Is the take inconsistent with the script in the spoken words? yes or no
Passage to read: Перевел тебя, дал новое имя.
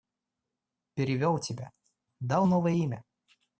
no